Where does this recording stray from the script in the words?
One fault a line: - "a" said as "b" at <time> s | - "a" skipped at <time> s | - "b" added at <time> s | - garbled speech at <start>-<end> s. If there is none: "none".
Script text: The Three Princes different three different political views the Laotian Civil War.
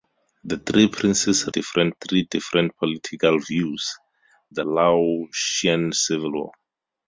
none